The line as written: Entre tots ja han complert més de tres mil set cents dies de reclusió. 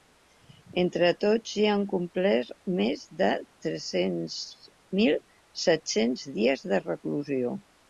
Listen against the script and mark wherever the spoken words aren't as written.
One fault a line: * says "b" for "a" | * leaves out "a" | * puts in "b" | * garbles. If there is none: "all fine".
all fine